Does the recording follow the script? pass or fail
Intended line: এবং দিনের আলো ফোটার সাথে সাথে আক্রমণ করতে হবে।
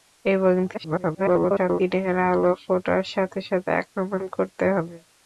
fail